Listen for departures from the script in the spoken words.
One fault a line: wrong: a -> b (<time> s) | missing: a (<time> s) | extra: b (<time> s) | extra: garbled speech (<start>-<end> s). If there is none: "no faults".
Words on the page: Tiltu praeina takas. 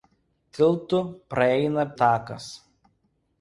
no faults